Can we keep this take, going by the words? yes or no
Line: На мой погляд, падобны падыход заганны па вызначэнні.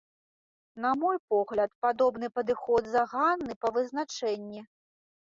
yes